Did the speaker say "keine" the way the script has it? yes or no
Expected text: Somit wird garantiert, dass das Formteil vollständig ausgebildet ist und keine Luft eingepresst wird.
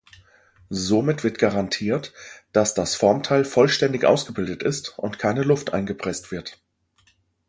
yes